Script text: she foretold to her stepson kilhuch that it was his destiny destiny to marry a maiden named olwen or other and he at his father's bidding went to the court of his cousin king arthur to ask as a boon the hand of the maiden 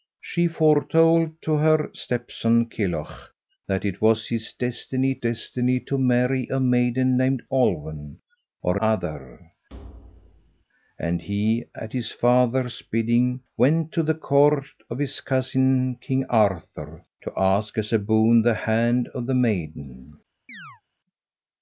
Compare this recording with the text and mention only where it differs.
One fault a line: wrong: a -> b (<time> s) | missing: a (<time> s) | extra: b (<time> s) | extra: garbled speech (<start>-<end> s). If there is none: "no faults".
no faults